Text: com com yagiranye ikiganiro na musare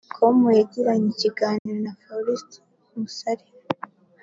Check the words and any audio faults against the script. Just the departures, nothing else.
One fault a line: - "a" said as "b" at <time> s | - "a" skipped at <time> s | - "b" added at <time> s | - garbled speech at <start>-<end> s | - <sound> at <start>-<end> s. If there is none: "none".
- "com" skipped at 0.4 s
- dropout at 1.6-1.7 s
- "faustin" added at 2.0 s